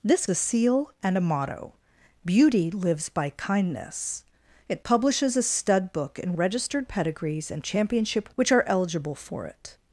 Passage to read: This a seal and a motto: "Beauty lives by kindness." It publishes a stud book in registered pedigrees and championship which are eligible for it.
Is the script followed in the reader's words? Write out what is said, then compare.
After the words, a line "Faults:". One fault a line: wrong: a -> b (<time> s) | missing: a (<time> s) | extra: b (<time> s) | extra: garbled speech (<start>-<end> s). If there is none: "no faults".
This a seal and a motto: "Beauty lives by kindness." It publishes a stud book in registered pedigrees and championship which are eligible for it.
Faults:
no faults